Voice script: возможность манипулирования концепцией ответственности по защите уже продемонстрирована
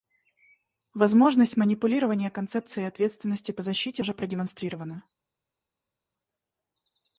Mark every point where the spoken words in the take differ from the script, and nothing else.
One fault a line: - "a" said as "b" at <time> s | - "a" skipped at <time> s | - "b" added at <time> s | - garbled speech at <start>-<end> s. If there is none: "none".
none